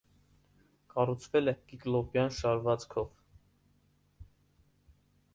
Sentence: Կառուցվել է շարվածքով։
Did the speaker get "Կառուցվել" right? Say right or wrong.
right